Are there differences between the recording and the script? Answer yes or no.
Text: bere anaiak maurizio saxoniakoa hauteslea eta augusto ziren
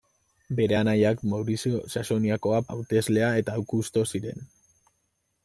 no